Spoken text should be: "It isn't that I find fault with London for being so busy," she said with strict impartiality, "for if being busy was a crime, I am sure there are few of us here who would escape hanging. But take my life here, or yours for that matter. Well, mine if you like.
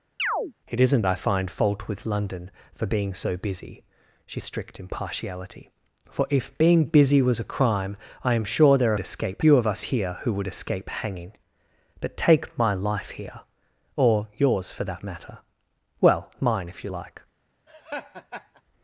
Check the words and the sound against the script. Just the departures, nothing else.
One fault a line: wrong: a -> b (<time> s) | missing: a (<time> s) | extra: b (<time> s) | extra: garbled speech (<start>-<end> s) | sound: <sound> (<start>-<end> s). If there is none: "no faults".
sound: chirp (0.2-0.5 s)
missing: that (1.0 s)
missing: said with (4.4 s)
wrong: are -> escape (9.0 s)
sound: laugh (17.7-18.6 s)